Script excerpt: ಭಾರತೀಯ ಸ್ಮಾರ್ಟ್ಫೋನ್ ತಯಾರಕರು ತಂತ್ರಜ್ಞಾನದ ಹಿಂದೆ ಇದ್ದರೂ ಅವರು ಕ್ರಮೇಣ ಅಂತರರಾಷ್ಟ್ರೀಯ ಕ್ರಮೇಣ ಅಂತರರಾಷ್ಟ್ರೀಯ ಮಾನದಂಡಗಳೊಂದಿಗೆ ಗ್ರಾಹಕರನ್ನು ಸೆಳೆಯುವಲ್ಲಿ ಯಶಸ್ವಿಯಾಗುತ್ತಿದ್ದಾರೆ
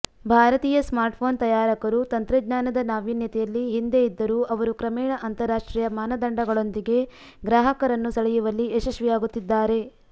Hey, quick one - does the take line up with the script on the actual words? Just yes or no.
no